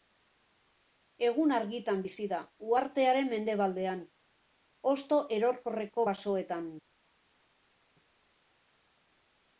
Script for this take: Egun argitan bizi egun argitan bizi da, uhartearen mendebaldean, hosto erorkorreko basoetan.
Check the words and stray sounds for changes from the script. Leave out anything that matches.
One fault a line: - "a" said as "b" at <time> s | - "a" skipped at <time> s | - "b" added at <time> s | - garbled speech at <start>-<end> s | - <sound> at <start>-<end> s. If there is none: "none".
- "egun argitan bizi" skipped at 2.3 s